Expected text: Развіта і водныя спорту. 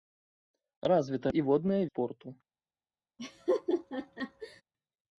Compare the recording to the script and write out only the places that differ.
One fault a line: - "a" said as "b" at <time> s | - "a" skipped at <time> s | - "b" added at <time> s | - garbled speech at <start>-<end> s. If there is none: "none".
none